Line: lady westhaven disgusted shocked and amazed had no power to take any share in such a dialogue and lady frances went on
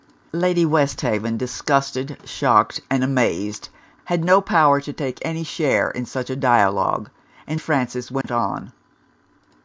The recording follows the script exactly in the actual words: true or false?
false